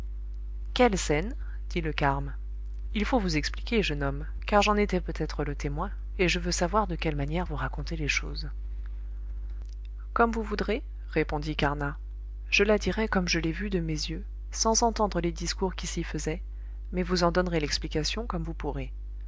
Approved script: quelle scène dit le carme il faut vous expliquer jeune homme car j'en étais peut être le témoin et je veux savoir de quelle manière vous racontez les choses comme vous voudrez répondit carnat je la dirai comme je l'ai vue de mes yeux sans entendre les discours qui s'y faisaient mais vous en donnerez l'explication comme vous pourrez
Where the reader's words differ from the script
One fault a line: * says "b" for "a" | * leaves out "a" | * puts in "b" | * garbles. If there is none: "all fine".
all fine